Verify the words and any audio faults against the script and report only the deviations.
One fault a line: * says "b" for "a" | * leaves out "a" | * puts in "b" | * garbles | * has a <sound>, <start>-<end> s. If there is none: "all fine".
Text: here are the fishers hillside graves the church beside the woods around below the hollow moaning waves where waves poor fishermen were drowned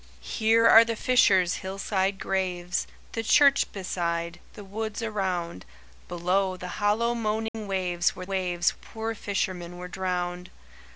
* has a dropout, 7.5-7.5 s